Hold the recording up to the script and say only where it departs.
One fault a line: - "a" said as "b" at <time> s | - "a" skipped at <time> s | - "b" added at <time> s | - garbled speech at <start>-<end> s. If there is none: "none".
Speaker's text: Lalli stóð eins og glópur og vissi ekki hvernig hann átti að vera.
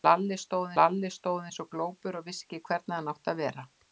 - "lalli stóð" added at 0.8 s